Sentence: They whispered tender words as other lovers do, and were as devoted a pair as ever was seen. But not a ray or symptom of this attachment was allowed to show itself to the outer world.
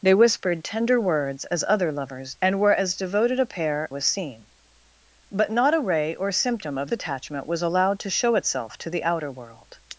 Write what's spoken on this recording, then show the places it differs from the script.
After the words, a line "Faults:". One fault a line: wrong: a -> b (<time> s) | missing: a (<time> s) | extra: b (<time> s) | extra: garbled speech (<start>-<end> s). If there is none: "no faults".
They whispered tender words as other lovers and were as devoted a pair was seen. But not a ray or symptom of attachment was allowed to show itself to the outer world.
Faults:
missing: do (2.3 s)
missing: as ever (3.9 s)
missing: this (6.9 s)